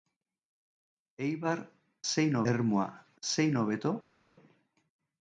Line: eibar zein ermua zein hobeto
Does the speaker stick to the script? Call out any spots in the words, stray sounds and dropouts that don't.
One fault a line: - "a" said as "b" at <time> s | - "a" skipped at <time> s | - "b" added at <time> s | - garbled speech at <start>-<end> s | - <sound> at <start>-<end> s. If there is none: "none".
none